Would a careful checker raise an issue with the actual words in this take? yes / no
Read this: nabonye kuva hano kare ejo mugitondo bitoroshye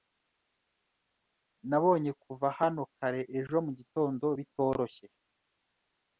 no